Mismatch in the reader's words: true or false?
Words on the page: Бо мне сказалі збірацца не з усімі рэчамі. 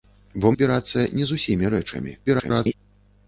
true